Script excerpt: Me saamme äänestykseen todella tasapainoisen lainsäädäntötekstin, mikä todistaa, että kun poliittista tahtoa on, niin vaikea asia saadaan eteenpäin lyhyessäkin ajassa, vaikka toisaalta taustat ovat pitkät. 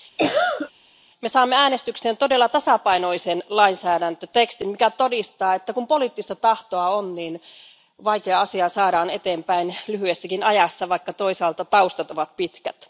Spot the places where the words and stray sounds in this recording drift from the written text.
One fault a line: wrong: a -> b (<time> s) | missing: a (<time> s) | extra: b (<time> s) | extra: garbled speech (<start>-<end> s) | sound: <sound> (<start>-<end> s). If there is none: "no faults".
sound: cough (0.2-0.7 s)